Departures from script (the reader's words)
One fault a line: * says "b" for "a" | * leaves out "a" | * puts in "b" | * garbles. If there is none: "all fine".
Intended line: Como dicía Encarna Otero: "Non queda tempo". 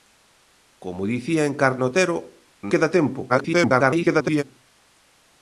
* leaves out "Non"
* garbles